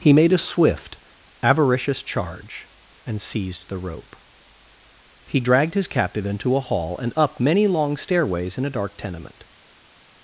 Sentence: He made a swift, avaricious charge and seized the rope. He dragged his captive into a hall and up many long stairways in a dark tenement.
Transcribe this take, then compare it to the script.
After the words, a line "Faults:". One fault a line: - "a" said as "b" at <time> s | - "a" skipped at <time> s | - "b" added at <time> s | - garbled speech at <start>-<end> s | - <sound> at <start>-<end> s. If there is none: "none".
He made a swift, avaricious charge and seized the rope. He dragged his captive into a hall and up many long stairways in a dark tenement.
Faults:
none